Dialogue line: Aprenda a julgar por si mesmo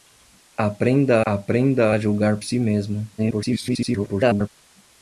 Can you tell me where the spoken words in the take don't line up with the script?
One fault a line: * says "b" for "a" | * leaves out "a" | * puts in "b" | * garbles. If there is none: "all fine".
* puts in "aprenda"
* leaves out "por"
* garbles